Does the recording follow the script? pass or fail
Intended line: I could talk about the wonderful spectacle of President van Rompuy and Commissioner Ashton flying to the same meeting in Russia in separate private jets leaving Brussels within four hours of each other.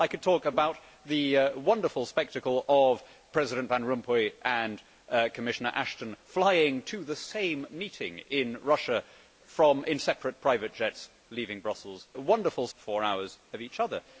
fail